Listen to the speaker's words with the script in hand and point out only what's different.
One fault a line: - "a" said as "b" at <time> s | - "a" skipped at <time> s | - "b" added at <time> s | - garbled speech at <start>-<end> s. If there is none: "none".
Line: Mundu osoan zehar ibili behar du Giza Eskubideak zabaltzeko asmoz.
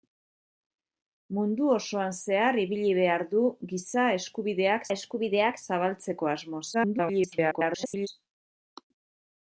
- "Eskubideak" added at 4.9 s
- garbled speech at 6.7-8.1 s